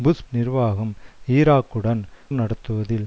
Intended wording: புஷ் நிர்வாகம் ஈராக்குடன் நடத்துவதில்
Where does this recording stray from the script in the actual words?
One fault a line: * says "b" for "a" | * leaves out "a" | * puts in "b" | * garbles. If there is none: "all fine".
all fine